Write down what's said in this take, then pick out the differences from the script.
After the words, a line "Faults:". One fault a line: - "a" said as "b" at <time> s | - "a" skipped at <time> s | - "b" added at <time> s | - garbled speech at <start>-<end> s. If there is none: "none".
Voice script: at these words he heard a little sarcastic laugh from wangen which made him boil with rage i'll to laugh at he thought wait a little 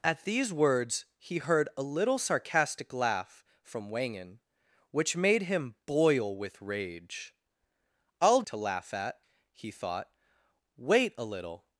at these words he heard a little sarcastic laugh from wangen which made him boil with rage i'll to laugh at he thought wait a little
Faults:
none